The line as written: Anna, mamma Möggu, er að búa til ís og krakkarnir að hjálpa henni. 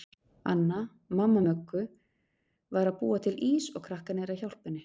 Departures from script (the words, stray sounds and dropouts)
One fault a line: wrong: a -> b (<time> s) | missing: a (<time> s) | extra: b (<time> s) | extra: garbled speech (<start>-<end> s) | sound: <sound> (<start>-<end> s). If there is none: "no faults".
wrong: er -> var (2.7 s)